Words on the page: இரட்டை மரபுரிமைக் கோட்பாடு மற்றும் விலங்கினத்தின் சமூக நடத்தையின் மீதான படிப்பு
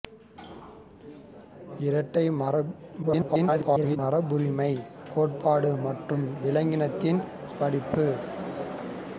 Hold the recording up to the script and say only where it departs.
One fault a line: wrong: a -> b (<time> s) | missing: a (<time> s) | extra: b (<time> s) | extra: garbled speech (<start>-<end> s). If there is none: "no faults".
extra: garbled speech (3.0-4.0 s)
missing: சமூக நடத்தையின் மீதான (7.2 s)